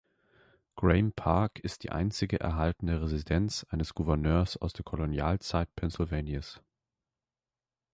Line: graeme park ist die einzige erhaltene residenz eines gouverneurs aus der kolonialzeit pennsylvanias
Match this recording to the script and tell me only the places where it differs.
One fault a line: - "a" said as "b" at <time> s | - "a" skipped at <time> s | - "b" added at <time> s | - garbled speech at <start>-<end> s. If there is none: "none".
none